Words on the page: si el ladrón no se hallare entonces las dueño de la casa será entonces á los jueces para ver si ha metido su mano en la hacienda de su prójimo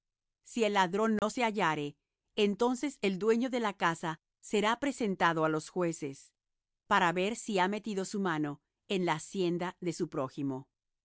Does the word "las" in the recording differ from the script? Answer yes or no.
yes